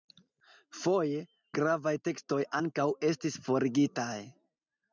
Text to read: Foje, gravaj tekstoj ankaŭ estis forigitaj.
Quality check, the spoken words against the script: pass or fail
pass